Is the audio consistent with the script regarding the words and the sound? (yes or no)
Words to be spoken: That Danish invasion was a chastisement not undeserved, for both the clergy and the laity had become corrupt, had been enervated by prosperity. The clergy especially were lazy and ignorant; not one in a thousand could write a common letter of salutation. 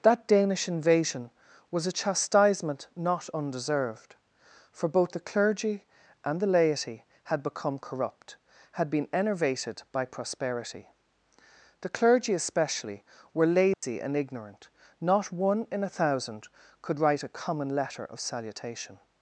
no